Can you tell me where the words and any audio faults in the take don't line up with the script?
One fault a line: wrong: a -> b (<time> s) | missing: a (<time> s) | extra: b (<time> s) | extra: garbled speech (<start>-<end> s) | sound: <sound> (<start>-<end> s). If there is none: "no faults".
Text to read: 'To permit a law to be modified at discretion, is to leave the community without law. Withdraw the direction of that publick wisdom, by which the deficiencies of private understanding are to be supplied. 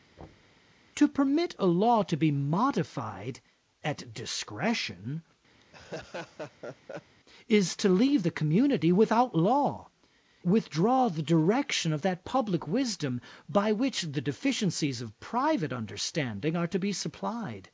sound: thud (0.2-0.6 s)
sound: laugh (5.6-7.2 s)